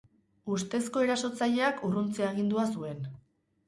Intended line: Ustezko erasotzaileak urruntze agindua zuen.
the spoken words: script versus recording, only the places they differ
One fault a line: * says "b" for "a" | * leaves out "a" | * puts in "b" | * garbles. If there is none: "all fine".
all fine